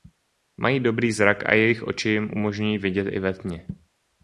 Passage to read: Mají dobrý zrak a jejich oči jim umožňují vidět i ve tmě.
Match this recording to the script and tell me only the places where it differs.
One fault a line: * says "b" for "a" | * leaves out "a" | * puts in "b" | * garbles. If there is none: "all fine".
all fine